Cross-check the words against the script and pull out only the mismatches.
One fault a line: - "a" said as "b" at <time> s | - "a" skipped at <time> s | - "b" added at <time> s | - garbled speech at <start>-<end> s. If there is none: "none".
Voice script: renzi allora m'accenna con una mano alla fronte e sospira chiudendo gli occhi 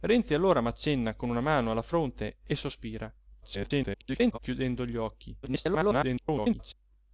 - garbled speech at 3.4-4.4 s
- garbled speech at 5.4-6.7 s